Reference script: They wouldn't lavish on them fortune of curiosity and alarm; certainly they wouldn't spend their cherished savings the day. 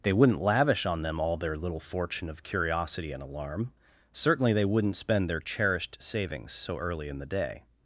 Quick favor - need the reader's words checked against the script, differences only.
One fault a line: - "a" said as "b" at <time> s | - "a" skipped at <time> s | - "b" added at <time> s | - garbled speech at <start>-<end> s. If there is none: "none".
- "all their little" added at 1.2 s
- "so early in" added at 6.5 s